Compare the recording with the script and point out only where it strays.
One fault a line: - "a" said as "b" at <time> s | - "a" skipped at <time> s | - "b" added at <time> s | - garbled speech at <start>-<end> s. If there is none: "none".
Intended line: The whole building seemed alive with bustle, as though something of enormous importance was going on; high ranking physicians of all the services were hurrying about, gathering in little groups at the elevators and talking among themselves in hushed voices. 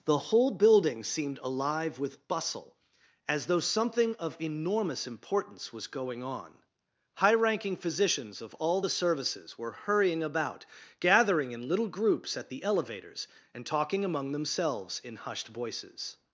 none